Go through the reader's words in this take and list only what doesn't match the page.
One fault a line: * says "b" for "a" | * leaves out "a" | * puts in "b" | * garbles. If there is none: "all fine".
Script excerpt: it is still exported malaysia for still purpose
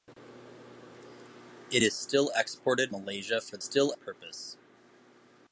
all fine